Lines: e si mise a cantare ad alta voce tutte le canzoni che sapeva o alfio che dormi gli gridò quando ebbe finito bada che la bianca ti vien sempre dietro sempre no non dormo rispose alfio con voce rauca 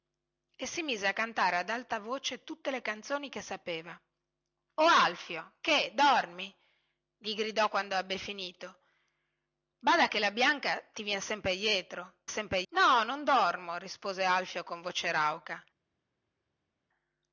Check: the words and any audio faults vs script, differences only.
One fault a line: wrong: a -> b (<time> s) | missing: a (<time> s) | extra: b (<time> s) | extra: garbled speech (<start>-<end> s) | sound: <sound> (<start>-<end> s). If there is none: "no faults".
no faults